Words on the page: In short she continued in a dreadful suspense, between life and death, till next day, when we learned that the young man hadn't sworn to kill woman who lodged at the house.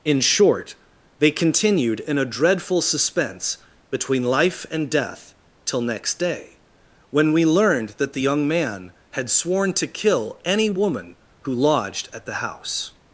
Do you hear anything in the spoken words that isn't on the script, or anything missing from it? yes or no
yes